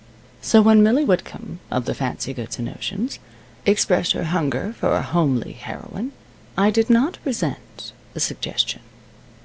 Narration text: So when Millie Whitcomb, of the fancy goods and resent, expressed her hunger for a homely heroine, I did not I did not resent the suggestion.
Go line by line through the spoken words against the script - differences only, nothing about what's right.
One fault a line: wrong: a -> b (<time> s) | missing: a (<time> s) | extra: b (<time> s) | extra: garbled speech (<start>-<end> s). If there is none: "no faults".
wrong: resent -> notions (2.7 s)
missing: I did not (7.2 s)